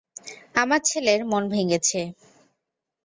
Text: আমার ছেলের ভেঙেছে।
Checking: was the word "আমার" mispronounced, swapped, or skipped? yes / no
no